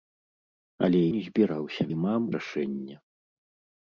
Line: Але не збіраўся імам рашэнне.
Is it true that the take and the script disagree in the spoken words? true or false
false